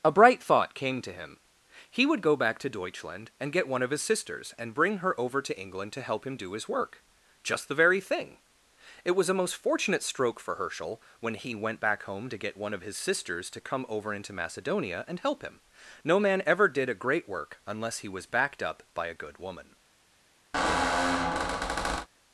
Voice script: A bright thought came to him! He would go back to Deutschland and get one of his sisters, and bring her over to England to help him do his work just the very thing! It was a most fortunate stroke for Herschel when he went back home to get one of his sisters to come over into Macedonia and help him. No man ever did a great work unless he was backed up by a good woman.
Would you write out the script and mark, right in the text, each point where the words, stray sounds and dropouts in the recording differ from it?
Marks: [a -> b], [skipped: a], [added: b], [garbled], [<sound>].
A bright thought came to him! He would go back to Deutschland and get one of his sisters, and bring her over to England to help him do his work just the very thing! It was a most fortunate stroke for Herschel when he went back home to get one of his sisters to come over into Macedonia and help him. No man ever did a great work unless he was backed up by a good woman. [squeak]